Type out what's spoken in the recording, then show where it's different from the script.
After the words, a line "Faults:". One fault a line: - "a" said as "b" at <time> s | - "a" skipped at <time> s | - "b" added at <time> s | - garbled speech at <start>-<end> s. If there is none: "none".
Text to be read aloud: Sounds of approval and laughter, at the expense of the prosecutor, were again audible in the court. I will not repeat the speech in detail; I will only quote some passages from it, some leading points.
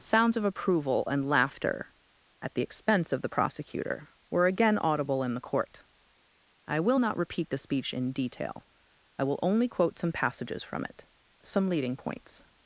Sounds of approval and laughter, at the expense of the prosecutor, were again audible in the court. I will not repeat the speech in detail; I will only quote some passages from it, some leading points.
Faults:
none